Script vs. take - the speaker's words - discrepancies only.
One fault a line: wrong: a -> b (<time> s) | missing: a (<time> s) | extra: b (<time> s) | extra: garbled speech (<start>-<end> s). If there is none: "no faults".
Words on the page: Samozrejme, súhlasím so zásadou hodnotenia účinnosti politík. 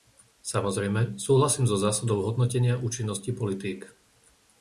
no faults